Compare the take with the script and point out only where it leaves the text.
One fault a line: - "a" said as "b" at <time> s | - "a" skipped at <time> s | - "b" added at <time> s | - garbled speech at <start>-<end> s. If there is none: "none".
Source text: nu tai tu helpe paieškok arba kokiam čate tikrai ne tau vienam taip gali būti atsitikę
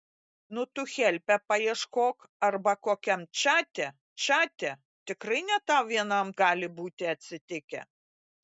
- "tai" skipped at 0.6 s
- "čate" added at 4.2 s
- "taip" skipped at 6.3 s